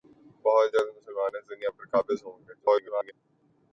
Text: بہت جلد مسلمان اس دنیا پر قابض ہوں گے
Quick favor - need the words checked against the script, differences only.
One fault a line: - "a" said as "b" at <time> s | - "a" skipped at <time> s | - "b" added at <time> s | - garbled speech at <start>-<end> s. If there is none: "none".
- garbled speech at 2.6-3.1 s